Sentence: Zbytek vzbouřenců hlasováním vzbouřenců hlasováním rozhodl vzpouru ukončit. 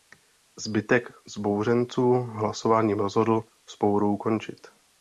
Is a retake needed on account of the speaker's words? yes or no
yes